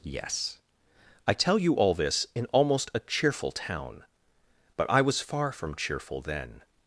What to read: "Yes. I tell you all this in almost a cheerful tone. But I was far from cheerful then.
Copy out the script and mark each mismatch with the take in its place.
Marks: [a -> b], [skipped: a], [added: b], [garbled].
"Yes. I tell you all this in almost a cheerful [tone. -> town] But I was far from cheerful then.